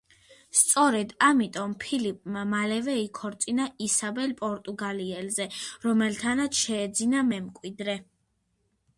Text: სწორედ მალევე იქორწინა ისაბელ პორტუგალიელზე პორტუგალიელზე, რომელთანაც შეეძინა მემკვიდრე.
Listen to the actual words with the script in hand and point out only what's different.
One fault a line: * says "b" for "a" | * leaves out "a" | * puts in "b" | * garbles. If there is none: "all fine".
* puts in "ამიტომ ფილიპმა"
* leaves out "პორტუგალიელზე"